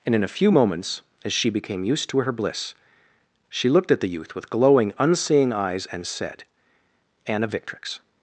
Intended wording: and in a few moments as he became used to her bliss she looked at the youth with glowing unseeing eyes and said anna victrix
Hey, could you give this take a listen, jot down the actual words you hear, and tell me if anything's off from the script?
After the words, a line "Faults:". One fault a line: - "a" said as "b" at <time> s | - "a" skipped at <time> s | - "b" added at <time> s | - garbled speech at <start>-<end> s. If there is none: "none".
and in a few moments as she became used to her bliss she looked at the youth with glowing unseeing eyes and said anna victrix
Faults:
- "he" said as "she" at 1.3 s